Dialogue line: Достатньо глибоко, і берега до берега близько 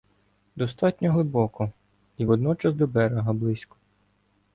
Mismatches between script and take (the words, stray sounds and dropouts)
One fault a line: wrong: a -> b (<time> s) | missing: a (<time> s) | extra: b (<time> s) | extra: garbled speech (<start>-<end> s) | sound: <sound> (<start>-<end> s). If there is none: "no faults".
wrong: берега -> водночас (2.2 s)